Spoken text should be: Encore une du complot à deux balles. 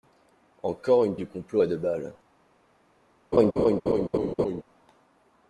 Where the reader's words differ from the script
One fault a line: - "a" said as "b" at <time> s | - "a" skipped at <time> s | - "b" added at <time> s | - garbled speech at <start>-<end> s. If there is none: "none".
none